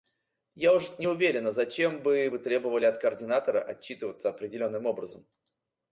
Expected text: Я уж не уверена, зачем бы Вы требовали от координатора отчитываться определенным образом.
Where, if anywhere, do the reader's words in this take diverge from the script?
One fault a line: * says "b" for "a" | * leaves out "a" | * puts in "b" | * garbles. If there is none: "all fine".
all fine